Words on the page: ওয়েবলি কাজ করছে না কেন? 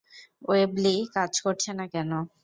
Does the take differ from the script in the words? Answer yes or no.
no